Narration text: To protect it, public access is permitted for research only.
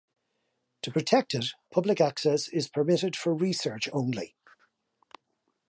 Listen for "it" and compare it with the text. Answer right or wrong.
right